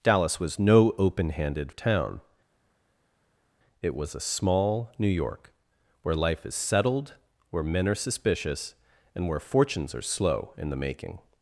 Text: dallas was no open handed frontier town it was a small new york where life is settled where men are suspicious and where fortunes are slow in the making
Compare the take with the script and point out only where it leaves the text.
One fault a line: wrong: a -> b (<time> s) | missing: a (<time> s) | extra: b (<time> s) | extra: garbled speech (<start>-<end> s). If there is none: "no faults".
missing: frontier (1.7 s)